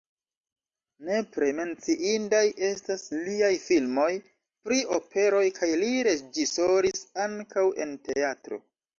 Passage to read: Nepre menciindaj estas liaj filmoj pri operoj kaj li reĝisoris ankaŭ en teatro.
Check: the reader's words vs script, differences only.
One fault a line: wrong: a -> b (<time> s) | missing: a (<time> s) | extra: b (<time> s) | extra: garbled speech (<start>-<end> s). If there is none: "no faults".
no faults